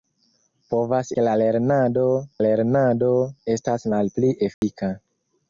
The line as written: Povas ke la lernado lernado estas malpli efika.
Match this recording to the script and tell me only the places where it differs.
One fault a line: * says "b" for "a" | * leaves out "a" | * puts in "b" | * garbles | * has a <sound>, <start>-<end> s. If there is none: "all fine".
* has a dropout, 4.5-4.6 s